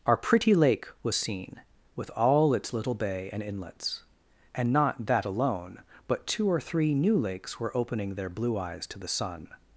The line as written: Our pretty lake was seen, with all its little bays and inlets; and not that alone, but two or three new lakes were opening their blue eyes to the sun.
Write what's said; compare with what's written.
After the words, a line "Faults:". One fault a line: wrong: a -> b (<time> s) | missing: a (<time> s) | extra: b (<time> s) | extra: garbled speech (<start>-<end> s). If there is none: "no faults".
Our pretty lake was seen, with all its little bay and inlets; and not that alone, but two or three new lakes were opening their blue eyes to the sun.
Faults:
wrong: bays -> bay (2.9 s)